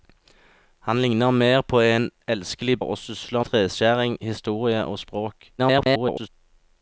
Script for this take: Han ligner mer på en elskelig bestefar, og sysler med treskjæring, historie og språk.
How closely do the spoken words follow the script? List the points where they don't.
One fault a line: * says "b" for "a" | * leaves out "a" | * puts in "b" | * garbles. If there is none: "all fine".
* leaves out "bestefar"
* leaves out "med"
* garbles